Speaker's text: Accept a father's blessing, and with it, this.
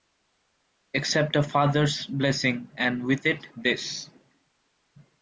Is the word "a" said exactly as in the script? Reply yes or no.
yes